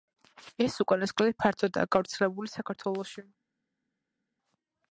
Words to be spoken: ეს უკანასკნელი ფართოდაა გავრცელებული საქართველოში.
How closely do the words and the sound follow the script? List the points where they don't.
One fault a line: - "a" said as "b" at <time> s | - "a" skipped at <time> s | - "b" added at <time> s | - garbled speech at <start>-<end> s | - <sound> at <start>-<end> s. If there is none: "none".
none